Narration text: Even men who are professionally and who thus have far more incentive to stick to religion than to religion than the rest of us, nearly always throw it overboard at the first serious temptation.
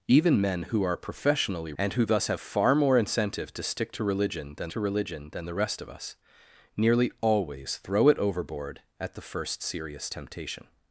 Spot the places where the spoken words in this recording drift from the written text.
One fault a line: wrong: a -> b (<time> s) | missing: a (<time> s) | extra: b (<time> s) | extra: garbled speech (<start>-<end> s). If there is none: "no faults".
no faults